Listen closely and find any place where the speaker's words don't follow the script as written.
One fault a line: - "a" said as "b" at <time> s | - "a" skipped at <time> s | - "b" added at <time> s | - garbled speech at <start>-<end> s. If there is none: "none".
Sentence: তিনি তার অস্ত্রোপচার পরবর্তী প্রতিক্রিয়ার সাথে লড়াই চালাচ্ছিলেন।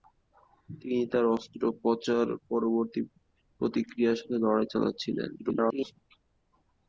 - garbled speech at 5.4-6.0 s